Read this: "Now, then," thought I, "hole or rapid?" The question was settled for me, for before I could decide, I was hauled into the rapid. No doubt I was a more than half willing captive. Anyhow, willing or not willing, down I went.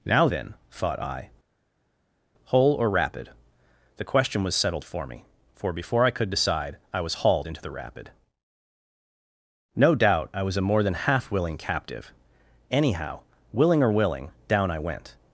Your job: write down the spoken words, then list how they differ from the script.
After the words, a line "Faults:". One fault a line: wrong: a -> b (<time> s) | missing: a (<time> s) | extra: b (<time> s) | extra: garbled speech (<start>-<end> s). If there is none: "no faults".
"Now, then," thought I, "hole or rapid?" The question was settled for me, for before I could decide, I was hauled into the rapid. No doubt I was a more than half willing captive. Anyhow, willing or willing, down I went.
Faults:
missing: not (13.9 s)